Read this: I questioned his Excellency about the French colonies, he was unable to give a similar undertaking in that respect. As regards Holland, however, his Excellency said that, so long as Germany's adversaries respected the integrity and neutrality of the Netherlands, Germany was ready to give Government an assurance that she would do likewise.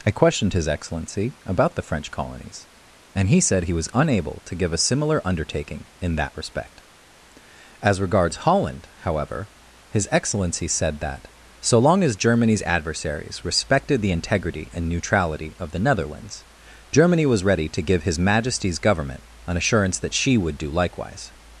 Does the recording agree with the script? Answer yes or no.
no